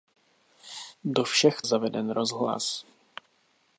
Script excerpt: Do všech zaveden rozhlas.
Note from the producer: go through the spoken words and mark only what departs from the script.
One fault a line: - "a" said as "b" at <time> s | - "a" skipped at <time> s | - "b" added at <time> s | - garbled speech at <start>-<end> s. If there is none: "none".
none